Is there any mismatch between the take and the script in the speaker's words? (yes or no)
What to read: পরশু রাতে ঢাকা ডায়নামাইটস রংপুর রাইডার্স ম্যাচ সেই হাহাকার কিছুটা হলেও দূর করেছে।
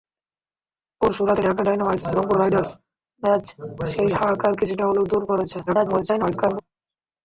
yes